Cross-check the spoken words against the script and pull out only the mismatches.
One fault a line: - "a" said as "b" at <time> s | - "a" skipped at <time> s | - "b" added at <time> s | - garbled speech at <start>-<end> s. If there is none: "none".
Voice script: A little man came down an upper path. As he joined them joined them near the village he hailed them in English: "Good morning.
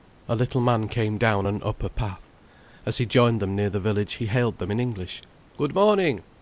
- "joined them" skipped at 3.5 s